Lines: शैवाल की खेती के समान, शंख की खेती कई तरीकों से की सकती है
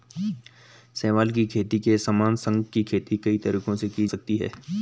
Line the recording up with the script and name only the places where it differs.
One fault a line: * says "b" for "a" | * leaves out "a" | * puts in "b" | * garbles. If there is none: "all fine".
all fine